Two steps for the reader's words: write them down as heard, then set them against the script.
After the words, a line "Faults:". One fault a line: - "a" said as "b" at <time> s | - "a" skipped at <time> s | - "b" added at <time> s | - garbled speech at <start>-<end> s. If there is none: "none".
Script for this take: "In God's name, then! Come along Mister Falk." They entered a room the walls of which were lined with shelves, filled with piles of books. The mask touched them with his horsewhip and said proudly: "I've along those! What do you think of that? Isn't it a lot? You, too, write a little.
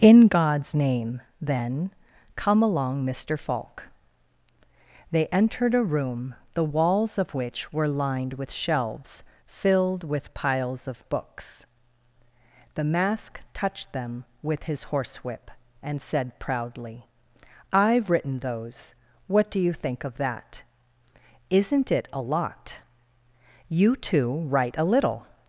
"In God's name, then! Come along Mister Falk." They entered a room the walls of which were lined with shelves, filled with piles of books. The mask touched them with his horsewhip and said proudly: "I've written those! What do you think of that? Isn't it a lot? You, too, write a little.
Faults:
- "along" said as "written" at 18.1 s